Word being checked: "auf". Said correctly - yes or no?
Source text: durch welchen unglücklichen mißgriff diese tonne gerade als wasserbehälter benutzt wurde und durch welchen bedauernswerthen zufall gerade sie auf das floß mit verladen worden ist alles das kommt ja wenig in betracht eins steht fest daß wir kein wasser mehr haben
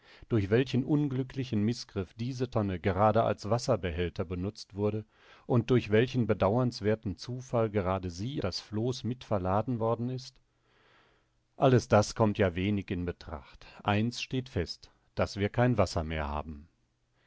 no